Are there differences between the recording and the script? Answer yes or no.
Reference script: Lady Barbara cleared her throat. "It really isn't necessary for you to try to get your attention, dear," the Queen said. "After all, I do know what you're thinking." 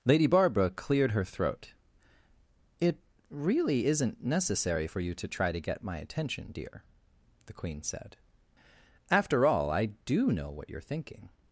yes